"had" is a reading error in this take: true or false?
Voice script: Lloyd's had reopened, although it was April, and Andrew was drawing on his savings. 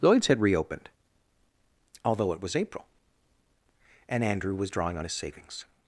false